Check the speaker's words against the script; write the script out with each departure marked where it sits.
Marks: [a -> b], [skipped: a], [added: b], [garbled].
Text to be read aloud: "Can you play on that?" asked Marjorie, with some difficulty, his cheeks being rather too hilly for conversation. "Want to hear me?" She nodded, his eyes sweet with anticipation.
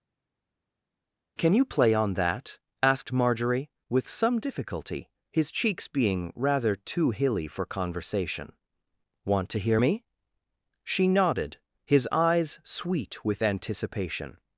"Can you play on that?" asked Marjorie, with some difficulty, his cheeks being rather too hilly for conversation. "Want to hear me?" She nodded, his eyes sweet with anticipation.